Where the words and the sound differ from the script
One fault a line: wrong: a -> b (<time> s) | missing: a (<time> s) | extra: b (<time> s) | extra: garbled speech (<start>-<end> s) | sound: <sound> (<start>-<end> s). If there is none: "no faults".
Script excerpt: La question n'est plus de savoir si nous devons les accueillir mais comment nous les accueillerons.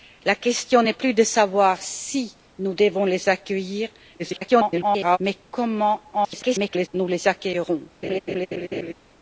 extra: garbled speech (4.2-5.2 s)
extra: garbled speech (6.1-6.9 s)
sound: laugh (8.0-8.9 s)